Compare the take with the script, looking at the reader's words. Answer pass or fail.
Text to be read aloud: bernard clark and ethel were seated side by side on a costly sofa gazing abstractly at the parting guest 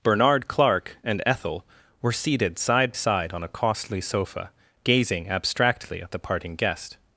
fail